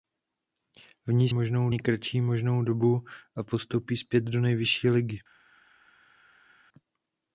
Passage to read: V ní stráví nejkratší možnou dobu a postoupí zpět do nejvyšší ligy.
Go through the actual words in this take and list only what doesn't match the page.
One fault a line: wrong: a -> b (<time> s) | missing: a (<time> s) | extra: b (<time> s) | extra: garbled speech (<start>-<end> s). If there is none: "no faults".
wrong: stráví -> možnou (1.3 s)